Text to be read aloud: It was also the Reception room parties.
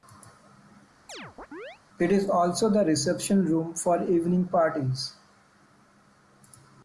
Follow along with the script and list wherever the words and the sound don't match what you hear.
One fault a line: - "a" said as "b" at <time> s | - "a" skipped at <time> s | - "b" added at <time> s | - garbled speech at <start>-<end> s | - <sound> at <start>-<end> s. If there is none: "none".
- chirp at 1.1-1.8 s
- "was" said as "is" at 2.1 s
- "for evening" added at 3.7 s